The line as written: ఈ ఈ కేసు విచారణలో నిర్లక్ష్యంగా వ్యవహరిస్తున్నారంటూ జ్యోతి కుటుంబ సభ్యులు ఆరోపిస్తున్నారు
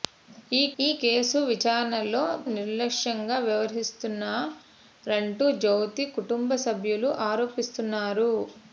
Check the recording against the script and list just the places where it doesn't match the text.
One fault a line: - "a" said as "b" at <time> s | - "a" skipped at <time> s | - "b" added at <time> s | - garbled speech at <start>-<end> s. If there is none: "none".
none